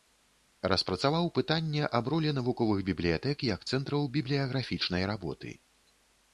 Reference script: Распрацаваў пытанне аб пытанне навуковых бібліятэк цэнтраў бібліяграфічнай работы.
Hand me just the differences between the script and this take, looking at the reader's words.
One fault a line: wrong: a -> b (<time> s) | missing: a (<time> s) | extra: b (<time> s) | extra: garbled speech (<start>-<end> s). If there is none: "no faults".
wrong: пытанне -> ролі (2.1 s)
extra: як (3.5 s)